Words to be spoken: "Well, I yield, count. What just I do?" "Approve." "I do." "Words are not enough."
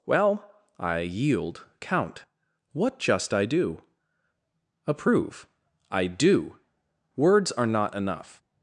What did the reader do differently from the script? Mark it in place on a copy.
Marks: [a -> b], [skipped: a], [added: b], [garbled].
"Well, I yield, count. What just I do?" "Approve." "I do." "Words are not enough."